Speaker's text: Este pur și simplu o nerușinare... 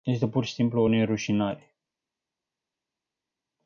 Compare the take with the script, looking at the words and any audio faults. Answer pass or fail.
pass